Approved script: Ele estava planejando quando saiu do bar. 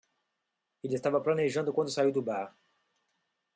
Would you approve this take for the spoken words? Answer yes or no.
yes